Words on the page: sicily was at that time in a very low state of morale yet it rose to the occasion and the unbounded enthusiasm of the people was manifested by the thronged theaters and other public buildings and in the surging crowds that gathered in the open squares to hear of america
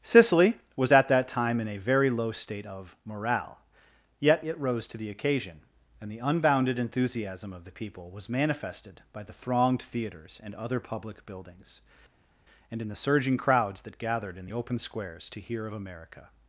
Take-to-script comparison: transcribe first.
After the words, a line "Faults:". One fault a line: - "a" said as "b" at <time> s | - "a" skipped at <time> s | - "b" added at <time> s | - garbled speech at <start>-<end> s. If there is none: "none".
sicily was at that time in a very low state of morale yet it rose to the occasion and the unbounded enthusiasm of the people was manifested by the thronged theaters and other public buildings and in the surging crowds that gathered in the open squares to hear of america
Faults:
none